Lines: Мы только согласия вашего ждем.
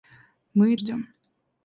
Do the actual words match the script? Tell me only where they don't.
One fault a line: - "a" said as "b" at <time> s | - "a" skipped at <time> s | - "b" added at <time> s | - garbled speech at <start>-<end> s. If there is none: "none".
- "только согласия вашего" skipped at 0.8 s